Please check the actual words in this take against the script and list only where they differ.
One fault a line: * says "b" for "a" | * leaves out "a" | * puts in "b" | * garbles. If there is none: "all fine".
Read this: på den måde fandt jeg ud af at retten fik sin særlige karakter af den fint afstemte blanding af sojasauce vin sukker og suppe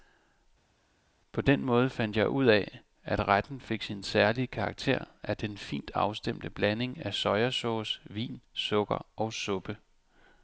all fine